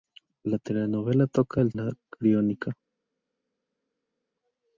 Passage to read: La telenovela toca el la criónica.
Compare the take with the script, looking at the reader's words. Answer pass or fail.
pass